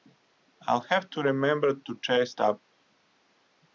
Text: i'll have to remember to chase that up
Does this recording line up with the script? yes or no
no